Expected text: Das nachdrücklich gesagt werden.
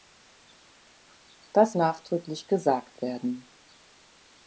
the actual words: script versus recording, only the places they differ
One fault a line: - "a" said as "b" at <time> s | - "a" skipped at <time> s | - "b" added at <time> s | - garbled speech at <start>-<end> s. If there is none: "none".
none